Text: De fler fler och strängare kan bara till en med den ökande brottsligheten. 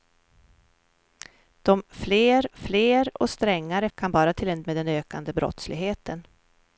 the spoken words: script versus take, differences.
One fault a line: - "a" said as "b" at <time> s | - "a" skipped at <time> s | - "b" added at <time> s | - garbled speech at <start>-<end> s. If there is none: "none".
none